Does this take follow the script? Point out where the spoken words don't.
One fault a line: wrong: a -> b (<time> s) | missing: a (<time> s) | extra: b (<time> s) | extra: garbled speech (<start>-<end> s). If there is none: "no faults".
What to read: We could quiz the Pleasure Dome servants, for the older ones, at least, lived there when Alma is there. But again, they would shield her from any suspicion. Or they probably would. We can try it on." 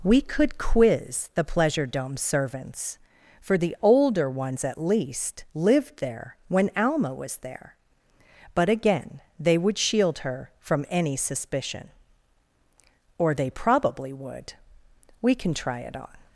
wrong: is -> was (7.1 s)